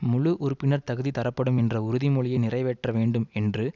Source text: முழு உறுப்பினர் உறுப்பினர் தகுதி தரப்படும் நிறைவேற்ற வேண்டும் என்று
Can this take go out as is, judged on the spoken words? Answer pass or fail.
fail